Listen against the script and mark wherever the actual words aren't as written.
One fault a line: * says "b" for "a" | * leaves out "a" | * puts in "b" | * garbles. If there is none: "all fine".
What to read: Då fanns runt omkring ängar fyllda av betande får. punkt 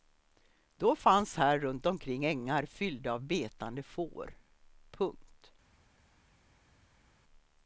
* puts in "här"